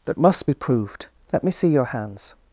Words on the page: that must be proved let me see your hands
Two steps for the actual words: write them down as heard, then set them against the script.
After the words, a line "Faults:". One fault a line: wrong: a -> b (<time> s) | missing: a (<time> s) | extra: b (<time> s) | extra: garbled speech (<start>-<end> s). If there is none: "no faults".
that must be proved let me see your hands
Faults:
no faults